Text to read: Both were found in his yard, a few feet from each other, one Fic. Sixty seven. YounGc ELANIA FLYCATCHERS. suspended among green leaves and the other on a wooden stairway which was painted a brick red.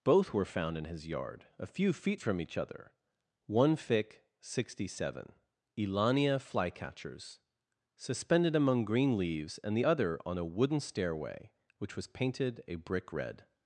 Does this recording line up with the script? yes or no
no